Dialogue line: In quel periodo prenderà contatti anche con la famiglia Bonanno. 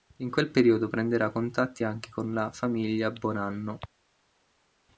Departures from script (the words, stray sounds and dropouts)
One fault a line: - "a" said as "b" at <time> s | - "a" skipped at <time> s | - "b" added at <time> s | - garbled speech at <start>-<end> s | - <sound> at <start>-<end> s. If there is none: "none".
none